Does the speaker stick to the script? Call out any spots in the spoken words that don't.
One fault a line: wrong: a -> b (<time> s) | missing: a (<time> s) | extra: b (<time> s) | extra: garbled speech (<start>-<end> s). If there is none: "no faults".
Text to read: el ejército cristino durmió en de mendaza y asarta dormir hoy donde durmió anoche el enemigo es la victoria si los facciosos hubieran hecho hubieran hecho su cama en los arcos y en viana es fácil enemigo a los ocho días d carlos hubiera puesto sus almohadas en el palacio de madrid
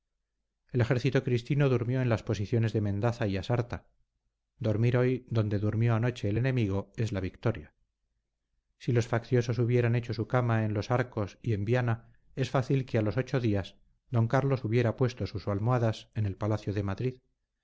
extra: las posiciones (2.1 s)
missing: hubieran hecho (10.1 s)
wrong: enemigo -> que (12.9 s)